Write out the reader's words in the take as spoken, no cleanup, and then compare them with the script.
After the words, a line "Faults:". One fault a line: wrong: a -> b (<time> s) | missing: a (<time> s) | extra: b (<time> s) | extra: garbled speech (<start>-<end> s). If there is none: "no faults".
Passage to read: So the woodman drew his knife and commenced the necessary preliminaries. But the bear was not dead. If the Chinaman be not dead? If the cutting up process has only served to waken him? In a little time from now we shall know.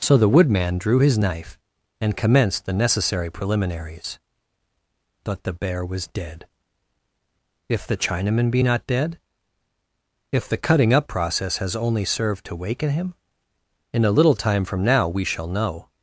So the woodman drew his knife and commenced the necessary preliminaries. But the bear was dead. If the Chinaman be not dead? If the cutting up process has only served to waken him? In a little time from now we shall know.
Faults:
missing: not (6.1 s)